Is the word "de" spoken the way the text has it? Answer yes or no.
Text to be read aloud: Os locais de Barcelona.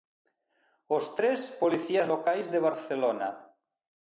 yes